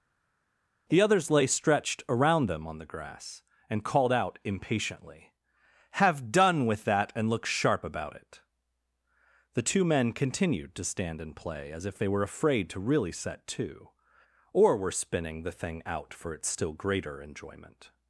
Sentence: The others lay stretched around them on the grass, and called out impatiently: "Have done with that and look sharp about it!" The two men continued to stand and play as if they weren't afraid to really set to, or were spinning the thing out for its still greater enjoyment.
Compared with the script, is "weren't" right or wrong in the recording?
wrong